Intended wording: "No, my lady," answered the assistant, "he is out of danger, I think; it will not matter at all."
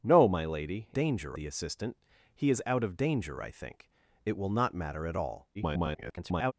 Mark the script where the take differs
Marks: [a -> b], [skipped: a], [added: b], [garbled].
"No, my lady," [answered -> danger] the assistant, "he is out of danger, I think; it will not matter at all." [garbled]